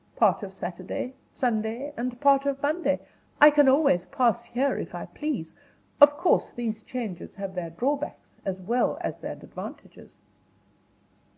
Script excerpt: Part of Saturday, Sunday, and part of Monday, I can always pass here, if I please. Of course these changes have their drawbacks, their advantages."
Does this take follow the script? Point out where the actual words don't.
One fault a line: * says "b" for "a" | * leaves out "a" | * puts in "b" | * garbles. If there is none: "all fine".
* puts in "as well as"